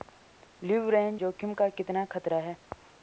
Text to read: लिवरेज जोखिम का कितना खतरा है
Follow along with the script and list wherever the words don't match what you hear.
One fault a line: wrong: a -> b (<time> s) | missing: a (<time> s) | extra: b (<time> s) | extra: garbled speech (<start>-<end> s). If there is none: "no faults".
no faults